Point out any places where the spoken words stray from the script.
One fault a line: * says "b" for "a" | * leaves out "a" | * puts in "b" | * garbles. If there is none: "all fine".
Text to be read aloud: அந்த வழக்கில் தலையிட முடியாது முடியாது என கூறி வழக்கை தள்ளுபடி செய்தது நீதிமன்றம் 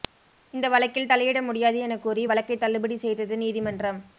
* says "இந்த" for "அந்த"
* leaves out "முடியாது"